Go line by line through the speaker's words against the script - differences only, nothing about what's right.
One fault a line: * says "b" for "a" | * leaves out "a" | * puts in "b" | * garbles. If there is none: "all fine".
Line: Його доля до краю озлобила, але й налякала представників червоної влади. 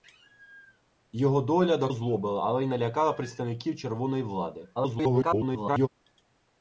* leaves out "краю"
* garbles